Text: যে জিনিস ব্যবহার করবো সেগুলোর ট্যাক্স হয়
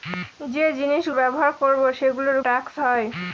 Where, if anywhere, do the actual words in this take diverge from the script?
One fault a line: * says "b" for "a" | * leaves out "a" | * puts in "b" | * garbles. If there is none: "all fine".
all fine